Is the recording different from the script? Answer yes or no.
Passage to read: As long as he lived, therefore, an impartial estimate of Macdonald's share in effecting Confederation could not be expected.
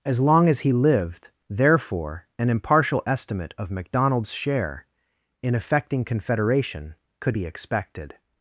yes